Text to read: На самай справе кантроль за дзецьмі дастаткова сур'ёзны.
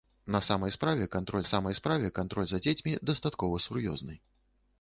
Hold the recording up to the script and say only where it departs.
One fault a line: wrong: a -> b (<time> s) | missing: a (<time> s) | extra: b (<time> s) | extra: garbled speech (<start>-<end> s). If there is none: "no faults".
extra: самай справе кантроль (1.5 s)